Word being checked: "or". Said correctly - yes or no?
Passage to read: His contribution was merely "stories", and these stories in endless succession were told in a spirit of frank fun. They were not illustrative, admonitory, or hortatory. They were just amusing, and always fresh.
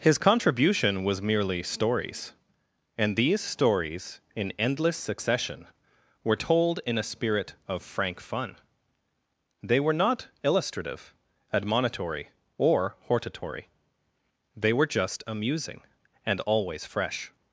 yes